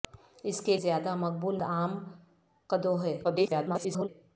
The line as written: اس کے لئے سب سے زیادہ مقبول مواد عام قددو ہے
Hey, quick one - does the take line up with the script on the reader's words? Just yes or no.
no